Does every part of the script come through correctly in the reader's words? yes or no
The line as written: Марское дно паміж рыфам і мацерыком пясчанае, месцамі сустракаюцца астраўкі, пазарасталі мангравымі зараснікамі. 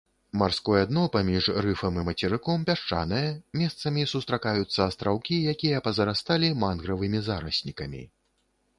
no